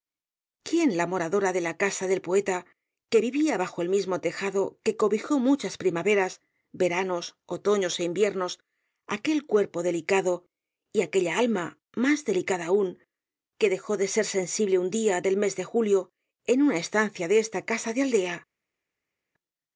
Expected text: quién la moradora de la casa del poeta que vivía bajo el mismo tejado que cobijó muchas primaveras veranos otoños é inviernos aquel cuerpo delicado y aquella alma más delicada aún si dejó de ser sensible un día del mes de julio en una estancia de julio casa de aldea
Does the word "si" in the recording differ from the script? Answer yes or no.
yes